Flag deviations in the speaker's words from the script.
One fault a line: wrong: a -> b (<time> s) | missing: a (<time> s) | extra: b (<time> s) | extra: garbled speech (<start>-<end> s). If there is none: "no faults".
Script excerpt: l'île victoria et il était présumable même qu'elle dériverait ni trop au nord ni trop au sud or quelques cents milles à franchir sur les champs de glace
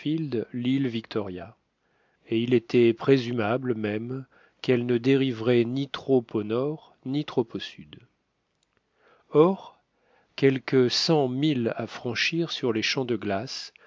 extra: ne (4.9 s)